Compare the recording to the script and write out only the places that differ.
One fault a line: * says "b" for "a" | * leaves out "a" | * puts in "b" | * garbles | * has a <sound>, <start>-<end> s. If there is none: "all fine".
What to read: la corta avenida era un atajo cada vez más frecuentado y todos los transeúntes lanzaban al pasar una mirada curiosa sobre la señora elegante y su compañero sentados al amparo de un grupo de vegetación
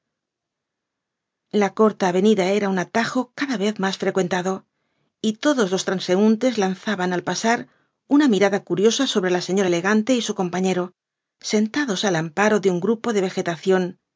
all fine